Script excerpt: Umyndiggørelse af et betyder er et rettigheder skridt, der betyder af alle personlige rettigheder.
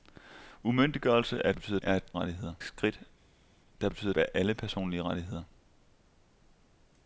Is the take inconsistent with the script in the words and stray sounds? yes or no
no